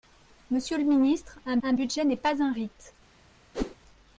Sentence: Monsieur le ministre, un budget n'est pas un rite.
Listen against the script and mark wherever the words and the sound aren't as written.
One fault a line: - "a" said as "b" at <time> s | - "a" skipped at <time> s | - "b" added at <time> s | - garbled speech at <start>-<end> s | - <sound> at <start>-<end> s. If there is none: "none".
- "un" added at 1.6 s
- whoosh at 3.5-3.8 s